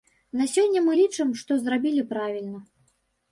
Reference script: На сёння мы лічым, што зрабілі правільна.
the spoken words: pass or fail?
pass